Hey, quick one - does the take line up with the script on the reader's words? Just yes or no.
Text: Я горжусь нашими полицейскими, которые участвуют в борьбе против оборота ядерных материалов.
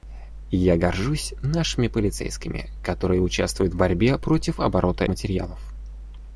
no